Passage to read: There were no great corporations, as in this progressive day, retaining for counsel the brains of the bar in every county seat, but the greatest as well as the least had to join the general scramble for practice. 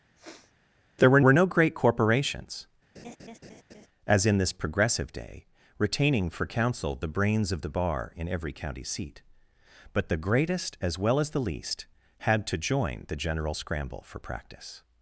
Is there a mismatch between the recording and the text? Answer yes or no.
yes